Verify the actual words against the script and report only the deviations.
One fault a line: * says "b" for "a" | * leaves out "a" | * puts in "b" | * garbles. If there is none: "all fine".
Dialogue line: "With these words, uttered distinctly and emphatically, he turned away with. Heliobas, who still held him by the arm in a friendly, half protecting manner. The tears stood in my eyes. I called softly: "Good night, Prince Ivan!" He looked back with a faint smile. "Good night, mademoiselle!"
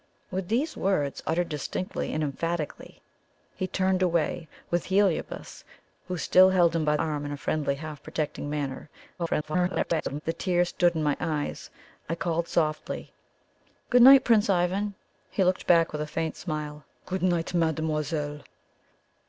* leaves out "the"
* garbles